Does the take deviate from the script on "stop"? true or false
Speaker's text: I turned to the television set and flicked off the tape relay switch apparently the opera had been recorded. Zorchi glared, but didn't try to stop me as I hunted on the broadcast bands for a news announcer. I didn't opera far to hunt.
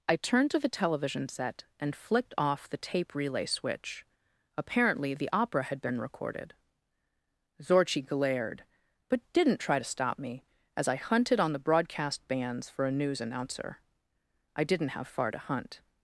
false